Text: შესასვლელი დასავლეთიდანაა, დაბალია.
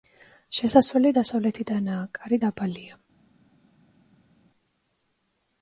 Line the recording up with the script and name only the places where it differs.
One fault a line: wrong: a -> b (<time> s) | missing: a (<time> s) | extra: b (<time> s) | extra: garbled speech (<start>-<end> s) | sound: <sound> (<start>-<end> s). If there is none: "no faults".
extra: კარი (2.2 s)